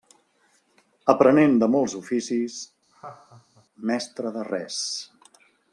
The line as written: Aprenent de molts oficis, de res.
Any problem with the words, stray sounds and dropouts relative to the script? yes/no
yes